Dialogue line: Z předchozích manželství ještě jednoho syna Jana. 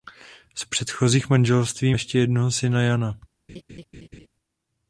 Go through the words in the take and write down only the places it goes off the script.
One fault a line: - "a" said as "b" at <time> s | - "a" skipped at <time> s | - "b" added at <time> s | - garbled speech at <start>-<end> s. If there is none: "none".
none